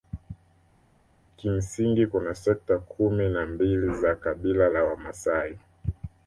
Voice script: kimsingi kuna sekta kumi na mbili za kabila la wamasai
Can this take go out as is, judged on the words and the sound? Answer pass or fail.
pass